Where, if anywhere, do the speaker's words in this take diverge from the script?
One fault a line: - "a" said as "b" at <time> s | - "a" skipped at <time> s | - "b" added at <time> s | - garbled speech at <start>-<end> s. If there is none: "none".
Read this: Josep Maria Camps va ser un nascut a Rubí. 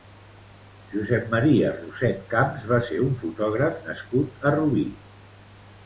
- "Roset" added at 1.8 s
- "fotògraf" added at 3.2 s